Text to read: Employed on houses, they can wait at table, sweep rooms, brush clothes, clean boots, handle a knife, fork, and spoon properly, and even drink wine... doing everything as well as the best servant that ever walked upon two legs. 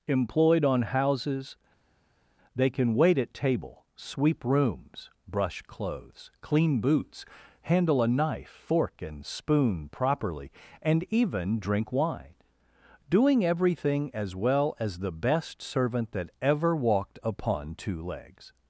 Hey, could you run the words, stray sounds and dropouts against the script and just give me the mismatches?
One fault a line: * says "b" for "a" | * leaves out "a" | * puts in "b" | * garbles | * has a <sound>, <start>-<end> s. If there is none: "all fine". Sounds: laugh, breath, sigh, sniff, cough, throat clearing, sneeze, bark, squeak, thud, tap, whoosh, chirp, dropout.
all fine